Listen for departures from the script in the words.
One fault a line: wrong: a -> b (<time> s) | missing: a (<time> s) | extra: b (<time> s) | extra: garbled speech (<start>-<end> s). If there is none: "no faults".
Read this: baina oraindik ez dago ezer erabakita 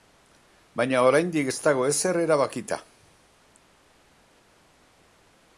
no faults